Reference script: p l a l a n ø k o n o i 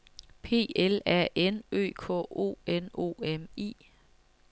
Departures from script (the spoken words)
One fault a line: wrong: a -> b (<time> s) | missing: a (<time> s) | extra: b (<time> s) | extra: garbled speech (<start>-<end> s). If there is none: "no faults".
missing: l a (1.3 s)
extra: m (3.2 s)